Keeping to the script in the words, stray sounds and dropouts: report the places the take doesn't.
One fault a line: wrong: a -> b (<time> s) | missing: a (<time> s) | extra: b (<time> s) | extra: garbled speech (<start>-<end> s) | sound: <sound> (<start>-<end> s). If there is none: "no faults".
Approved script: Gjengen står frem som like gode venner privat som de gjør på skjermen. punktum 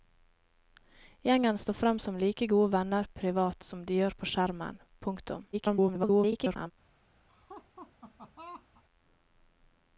extra: garbled speech (5.5-6.7 s)
sound: laugh (7.3-8.8 s)